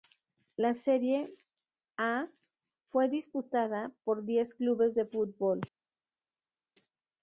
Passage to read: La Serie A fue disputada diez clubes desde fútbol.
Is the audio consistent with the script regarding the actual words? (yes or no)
no